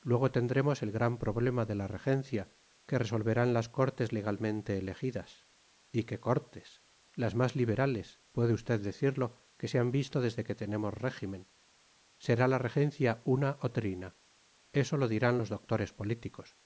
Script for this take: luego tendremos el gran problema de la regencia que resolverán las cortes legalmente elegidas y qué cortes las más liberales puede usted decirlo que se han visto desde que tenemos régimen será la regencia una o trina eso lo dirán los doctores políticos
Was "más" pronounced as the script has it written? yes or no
yes